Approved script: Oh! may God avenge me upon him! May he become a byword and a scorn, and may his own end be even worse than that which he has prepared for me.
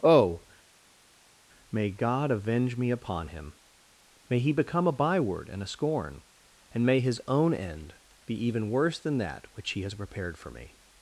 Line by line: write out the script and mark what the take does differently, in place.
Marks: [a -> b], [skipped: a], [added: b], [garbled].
Oh! may God avenge me upon him! May he become a byword and a scorn, and may his own end be even worse than that which he has prepared for me.